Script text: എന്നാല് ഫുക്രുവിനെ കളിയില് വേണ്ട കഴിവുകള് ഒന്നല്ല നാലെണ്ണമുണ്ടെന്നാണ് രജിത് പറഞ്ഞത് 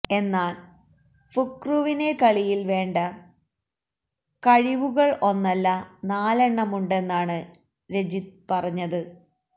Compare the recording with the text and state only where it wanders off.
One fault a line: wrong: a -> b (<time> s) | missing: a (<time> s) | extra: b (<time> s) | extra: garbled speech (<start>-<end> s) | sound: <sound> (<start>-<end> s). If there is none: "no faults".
no faults